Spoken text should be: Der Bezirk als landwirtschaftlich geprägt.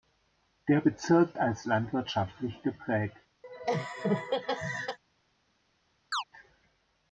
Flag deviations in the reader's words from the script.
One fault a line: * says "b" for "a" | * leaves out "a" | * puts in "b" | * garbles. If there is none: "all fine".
all fine